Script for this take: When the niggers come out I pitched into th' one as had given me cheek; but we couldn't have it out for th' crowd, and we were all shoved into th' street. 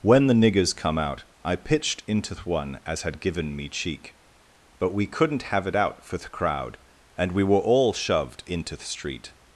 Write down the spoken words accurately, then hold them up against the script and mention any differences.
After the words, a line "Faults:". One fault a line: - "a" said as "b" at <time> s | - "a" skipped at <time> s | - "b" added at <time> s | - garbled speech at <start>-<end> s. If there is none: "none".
When the niggers come out I pitched into th' one as had given me cheek; but we couldn't have it out for th' crowd, and we were all shoved into th' street.
Faults:
none